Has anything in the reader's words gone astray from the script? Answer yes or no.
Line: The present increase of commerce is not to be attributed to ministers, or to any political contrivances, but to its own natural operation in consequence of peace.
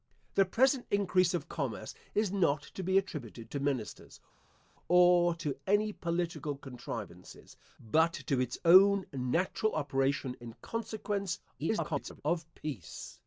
yes